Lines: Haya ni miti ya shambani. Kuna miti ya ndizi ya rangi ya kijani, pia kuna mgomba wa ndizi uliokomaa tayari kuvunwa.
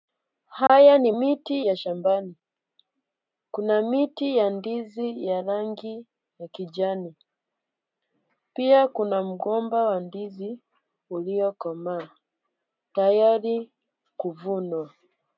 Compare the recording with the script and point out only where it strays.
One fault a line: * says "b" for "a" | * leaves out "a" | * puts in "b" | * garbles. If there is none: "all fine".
all fine